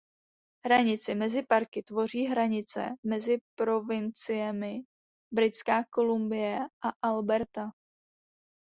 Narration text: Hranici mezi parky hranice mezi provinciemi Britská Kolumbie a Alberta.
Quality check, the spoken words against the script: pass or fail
fail